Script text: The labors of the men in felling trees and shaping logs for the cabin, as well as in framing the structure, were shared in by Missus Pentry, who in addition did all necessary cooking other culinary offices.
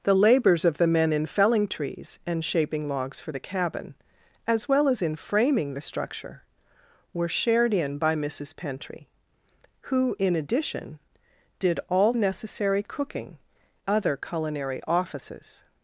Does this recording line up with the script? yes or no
yes